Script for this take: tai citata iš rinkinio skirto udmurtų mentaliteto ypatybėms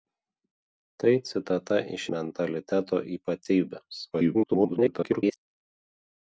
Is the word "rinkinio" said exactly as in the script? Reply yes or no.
no